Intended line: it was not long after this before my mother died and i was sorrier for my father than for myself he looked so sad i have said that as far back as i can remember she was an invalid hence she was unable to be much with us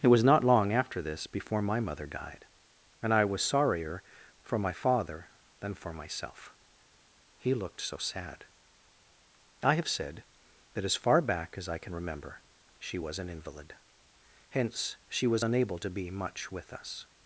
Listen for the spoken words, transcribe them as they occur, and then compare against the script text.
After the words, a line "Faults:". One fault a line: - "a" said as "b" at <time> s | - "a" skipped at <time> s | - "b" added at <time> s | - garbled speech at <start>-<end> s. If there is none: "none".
it was not long after this before my mother died and i was sorrier for my father than for myself he looked so sad i have said that as far back as i can remember she was an invalid hence she was unable to be much with us
Faults:
none